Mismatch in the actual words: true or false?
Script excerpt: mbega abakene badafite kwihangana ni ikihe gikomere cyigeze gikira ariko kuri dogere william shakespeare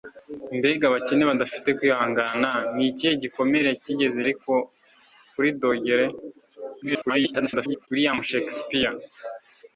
true